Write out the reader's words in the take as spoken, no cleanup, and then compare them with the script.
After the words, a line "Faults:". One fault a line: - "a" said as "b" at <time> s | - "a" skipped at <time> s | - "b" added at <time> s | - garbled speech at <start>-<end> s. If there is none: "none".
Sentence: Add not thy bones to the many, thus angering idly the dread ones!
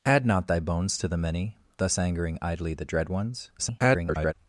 Add not thy bones to the many, thus angering idly the dread ones! [garbled]
Faults:
- garbled speech at 3.6-4.3 s